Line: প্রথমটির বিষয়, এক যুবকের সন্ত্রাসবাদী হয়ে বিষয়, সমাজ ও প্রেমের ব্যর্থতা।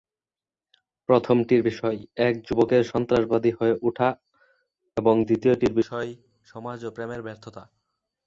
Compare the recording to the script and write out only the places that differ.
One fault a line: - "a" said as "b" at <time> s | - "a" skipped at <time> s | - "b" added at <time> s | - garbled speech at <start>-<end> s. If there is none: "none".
- "ওঠা এবং দ্বিতীয়টির" added at 3.8 s